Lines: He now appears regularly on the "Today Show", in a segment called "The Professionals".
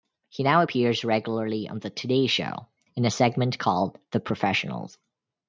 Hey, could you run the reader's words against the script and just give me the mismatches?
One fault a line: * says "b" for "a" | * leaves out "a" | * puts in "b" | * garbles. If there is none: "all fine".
all fine